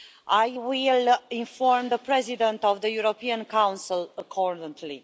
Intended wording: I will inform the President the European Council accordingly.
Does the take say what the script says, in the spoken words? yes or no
no